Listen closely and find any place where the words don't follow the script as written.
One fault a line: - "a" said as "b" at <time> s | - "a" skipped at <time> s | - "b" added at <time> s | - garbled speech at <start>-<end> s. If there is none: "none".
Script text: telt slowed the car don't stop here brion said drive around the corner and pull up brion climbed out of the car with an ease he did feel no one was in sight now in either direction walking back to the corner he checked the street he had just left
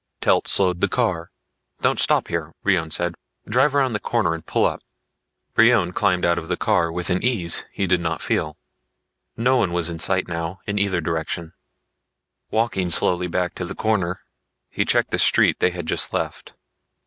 - "not" added at 8.0 s
- "slowly" added at 12.9 s
- "he" said as "they" at 15.6 s